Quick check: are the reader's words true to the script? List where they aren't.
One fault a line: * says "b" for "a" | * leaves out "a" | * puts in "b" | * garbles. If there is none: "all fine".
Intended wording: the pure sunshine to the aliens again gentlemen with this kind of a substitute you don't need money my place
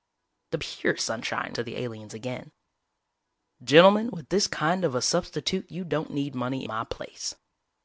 all fine